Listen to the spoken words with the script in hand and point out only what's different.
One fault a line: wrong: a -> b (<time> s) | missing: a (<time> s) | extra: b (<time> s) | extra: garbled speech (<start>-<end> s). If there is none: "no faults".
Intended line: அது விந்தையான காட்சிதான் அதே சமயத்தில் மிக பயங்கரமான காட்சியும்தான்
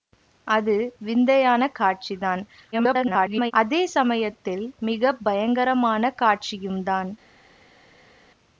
extra: garbled speech (2.7-3.5 s)